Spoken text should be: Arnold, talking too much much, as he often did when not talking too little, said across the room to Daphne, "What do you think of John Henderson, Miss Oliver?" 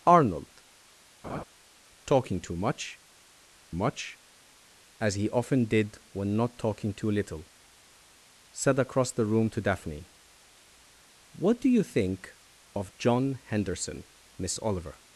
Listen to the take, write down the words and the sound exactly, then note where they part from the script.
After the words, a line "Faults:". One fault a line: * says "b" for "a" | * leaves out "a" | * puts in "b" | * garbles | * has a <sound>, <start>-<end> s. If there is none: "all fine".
Arnold, talking too much much, as he often did when not talking too little, said across the room to Daphne, "What do you think of John Henderson, Miss Oliver?"
Faults:
* has a laugh, 1.2-1.4 s